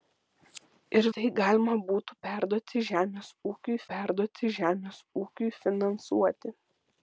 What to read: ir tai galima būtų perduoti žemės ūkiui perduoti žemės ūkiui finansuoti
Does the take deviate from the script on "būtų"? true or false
false